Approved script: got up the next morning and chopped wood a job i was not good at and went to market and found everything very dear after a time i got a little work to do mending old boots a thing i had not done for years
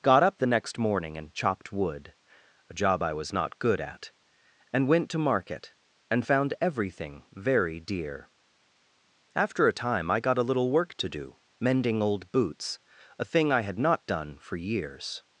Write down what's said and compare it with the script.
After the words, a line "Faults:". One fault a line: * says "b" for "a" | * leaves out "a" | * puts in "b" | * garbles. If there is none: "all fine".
got up the next morning and chopped wood a job i was not good at and went to market and found everything very dear after a time i got a little work to do mending old boots a thing i had not done for years
Faults:
all fine